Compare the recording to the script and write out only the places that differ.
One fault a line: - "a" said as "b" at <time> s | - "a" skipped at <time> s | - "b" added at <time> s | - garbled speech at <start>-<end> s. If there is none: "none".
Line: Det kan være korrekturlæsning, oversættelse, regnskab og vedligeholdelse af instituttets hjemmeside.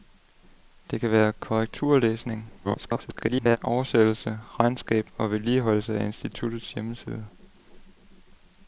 - garbled speech at 2.6-3.6 s